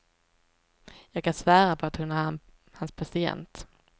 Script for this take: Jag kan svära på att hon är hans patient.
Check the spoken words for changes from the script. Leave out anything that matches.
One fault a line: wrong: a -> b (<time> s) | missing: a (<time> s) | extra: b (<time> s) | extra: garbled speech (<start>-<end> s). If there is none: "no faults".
no faults